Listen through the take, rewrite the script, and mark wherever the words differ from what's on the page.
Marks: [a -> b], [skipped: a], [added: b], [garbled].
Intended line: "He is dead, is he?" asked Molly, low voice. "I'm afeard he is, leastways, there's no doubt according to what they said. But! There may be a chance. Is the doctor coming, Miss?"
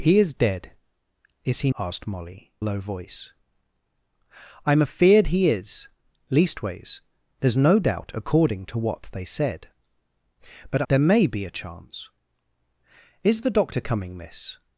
"He is dead, is he?" asked Molly, low voice. "I'm afeard he is, leastways, there's no doubt according to what they said. But! There may be a chance. Is the doctor coming, Miss?"